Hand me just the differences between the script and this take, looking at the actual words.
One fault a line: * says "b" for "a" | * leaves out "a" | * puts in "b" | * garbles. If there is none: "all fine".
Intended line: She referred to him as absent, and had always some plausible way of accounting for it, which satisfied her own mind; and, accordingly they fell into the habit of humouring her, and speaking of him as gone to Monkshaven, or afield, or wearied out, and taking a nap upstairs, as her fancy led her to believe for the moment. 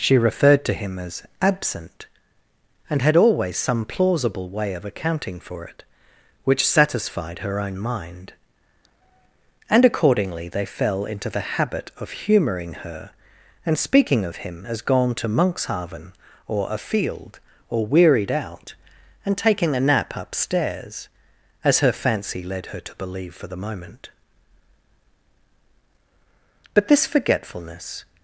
* puts in "But this forgetfulness"